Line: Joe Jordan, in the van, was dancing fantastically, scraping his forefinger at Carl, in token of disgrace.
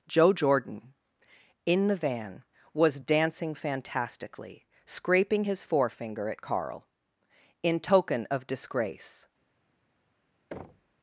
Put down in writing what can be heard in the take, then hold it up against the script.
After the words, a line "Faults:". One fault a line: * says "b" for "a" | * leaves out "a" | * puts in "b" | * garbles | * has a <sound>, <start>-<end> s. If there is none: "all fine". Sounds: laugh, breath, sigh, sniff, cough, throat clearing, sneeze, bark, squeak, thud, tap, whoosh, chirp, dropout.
Joe Jordan, in the van, was dancing fantastically, scraping his forefinger at Carl, in token of disgrace.
Faults:
* has a thud, 10.5-11.0 s